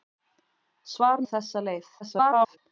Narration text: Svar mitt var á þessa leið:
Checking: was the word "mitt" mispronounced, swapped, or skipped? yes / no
yes